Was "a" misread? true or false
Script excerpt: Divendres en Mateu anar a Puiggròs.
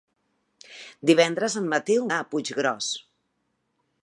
false